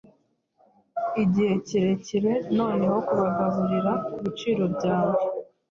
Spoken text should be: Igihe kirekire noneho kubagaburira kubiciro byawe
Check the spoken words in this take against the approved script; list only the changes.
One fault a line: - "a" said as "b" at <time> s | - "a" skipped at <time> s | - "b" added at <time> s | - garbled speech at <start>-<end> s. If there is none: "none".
none